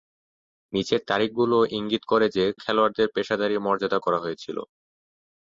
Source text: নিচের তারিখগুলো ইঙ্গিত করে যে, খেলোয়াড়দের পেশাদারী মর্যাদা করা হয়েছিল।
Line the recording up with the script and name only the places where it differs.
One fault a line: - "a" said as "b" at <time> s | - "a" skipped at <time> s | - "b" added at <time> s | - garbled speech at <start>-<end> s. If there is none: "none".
none